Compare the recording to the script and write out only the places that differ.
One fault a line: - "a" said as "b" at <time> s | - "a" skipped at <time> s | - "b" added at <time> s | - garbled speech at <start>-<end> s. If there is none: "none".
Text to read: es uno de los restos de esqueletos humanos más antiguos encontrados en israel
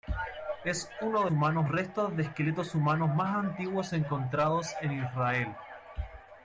- "los" said as "humanos" at 1.3 s